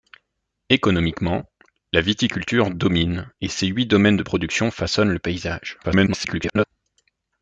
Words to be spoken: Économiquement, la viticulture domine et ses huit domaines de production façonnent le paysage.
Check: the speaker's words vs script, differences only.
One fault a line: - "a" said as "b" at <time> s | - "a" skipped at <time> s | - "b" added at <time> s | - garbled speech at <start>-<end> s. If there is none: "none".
- garbled speech at 5.8-6.7 s